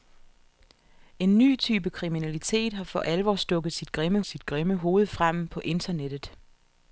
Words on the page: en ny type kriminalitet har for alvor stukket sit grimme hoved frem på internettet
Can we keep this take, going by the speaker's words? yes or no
no